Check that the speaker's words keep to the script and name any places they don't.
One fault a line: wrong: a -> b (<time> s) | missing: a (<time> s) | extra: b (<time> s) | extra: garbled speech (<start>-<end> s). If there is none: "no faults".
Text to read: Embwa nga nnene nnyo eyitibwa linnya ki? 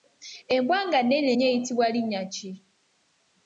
no faults